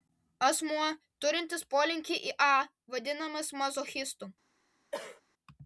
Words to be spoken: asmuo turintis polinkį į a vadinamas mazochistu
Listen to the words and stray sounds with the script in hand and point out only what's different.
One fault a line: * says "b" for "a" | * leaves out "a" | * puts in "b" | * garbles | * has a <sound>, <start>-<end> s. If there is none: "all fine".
* has a cough, 4.9-5.2 s